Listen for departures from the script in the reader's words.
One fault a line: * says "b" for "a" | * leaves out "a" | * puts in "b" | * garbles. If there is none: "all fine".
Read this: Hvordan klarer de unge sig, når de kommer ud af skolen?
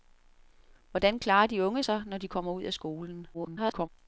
* garbles